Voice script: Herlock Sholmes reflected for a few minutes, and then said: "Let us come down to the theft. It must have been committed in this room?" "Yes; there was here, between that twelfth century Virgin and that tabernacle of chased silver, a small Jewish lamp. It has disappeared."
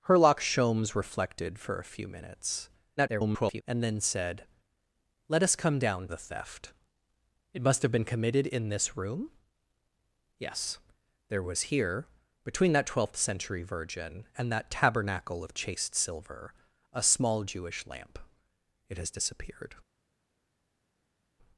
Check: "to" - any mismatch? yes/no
yes